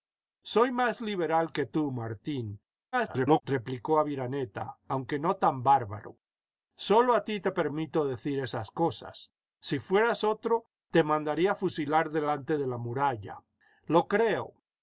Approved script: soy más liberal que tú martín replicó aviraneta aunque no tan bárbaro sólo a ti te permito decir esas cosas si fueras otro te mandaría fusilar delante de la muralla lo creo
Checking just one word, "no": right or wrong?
right